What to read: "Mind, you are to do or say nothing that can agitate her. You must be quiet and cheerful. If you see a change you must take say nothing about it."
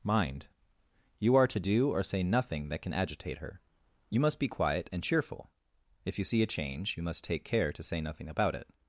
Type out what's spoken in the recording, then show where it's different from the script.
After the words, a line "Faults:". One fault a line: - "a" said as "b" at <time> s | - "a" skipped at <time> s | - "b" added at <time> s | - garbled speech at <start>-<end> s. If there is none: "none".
"Mind, you are to do or say nothing that can agitate her. You must be quiet and cheerful. If you see a change you must take care to say nothing about it."
Faults:
- "care to" added at 7.4 s